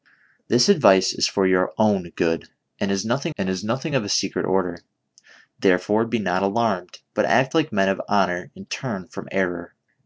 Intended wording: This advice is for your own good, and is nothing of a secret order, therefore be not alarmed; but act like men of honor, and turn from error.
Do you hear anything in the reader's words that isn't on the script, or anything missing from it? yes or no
yes